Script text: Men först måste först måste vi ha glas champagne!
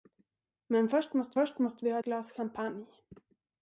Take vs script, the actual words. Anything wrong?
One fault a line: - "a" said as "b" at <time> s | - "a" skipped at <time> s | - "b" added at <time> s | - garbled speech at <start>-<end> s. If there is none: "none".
none